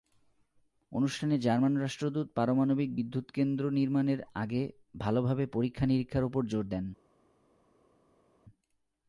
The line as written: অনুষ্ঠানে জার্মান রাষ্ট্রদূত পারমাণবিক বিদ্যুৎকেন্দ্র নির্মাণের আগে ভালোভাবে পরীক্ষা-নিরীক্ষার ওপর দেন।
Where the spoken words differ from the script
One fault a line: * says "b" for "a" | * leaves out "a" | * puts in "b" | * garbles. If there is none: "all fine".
* puts in "জোর"